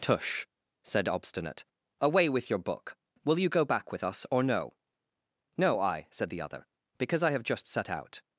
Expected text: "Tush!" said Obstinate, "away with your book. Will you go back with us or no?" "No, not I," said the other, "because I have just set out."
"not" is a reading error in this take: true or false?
true